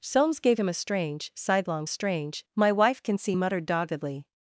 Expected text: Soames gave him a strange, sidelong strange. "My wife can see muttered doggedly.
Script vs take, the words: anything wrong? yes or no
no